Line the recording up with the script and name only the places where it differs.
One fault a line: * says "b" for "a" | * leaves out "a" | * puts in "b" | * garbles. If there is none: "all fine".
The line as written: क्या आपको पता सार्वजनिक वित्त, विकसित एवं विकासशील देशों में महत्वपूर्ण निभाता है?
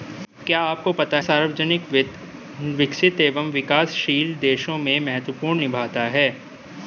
all fine